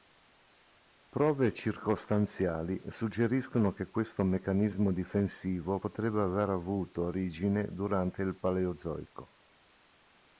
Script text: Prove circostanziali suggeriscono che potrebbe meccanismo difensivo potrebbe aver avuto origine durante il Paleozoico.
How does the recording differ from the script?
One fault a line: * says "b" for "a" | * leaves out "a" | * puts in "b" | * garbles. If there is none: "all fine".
* says "questo" for "potrebbe"